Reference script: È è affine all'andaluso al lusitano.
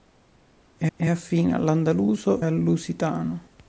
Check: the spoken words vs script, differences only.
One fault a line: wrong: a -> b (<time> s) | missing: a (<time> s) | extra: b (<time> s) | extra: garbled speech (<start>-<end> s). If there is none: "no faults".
no faults